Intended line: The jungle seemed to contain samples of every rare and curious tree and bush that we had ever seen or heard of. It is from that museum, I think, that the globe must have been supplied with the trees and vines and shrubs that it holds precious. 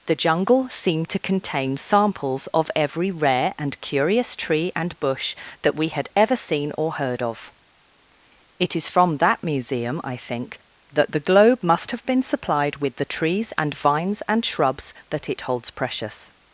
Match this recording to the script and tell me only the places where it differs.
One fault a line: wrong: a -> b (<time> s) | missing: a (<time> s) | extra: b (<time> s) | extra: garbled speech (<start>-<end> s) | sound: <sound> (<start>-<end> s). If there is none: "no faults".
no faults